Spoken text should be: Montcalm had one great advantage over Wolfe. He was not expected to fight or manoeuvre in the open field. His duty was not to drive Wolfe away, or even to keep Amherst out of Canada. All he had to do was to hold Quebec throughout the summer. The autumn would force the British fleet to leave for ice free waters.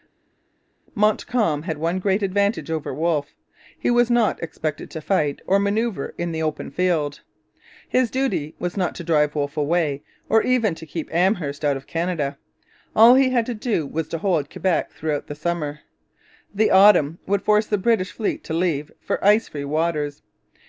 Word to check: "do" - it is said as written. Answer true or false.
true